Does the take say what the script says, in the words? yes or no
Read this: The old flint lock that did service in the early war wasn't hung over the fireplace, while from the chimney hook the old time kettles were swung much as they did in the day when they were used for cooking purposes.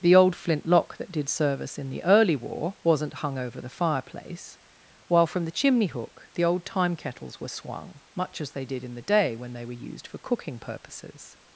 yes